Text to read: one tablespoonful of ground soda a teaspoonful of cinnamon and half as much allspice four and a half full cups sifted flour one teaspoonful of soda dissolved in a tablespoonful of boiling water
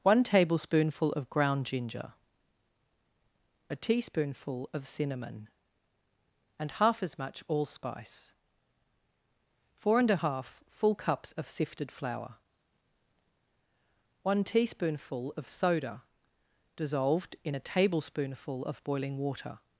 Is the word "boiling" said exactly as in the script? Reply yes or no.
yes